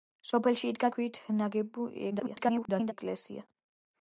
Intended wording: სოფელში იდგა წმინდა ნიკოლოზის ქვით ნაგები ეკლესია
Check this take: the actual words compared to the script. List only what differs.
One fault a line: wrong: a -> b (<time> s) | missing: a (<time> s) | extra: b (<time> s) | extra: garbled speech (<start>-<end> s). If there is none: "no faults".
missing: წმინდა ნიკოლოზის (0.9 s)
extra: garbled speech (2.1-2.9 s)